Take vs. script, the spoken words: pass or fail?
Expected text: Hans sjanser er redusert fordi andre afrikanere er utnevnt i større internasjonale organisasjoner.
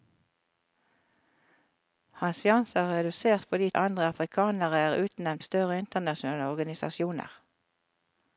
pass